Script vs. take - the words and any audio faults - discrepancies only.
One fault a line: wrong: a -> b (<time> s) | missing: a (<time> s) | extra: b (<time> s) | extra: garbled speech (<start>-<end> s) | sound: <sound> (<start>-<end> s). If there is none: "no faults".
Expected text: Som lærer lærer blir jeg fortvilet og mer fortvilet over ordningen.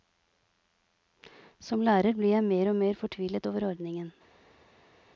missing: lærer (2.2 s)
wrong: fortvilet -> mer (2.4 s)